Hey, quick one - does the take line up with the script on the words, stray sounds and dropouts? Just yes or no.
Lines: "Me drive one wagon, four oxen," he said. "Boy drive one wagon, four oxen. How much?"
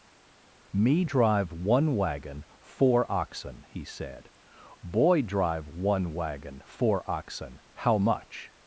yes